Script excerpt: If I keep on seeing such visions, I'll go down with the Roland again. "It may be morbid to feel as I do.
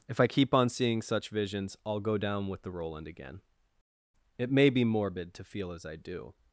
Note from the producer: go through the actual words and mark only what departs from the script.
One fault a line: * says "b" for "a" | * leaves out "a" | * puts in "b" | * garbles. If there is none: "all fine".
all fine